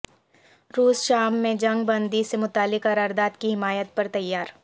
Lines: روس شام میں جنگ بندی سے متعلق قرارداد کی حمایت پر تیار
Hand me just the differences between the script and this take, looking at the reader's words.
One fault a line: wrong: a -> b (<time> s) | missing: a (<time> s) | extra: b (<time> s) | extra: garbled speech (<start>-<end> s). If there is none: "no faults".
no faults